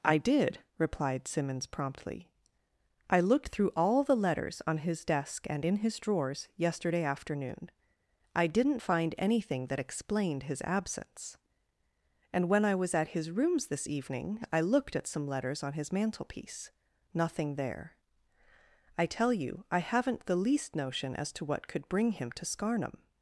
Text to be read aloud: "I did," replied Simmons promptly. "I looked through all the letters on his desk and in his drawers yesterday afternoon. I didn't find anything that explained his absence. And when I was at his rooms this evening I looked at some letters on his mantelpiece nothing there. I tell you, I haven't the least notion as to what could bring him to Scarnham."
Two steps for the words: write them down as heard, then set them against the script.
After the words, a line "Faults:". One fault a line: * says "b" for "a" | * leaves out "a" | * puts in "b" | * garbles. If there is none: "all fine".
"I did," replied Simmons promptly. "I looked through all the letters on his desk and in his drawers yesterday afternoon. I didn't find anything that explained his absence. And when I was at his rooms this evening I looked at some letters on his mantelpiece nothing there. I tell you, I haven't the least notion as to what could bring him to Scarnham."
Faults:
all fine